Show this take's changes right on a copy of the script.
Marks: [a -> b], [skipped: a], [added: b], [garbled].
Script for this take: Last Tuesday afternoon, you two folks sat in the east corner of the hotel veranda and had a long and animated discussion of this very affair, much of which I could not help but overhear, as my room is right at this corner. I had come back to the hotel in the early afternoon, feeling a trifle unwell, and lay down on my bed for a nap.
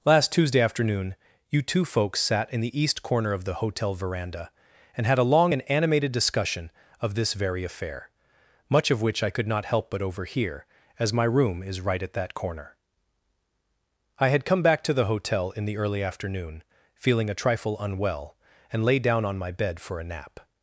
Last Tuesday afternoon, you two folks sat in the east corner of the hotel veranda and had a long and animated discussion of this very affair, much of which I could not help but overhear, as my room is right at [this -> that] corner. I had come back to the hotel in the early afternoon, feeling a trifle unwell, and lay down on my bed for a nap.